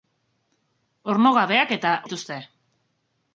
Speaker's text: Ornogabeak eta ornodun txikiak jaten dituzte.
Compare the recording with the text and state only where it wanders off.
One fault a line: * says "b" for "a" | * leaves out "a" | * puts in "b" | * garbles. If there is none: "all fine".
* leaves out "ornodun txikiak jaten"